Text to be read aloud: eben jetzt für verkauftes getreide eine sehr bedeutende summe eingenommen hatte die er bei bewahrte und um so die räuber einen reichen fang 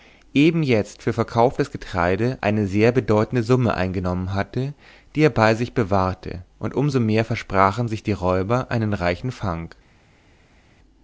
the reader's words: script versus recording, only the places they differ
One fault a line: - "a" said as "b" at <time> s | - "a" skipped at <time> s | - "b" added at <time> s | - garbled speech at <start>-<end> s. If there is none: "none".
- "sich" added at 5.5 s
- "mehr versprachen sich" added at 7.0 s